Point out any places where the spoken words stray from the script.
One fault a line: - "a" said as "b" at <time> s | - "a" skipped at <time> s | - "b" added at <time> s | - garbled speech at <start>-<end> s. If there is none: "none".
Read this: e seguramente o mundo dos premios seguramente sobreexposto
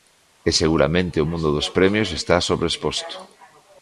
- "seguramente" said as "está" at 2.2 s